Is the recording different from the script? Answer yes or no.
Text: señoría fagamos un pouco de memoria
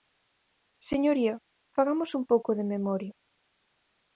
no